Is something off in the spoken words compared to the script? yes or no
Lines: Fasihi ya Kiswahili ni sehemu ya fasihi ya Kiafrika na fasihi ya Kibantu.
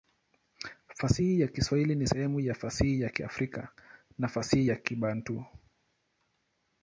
no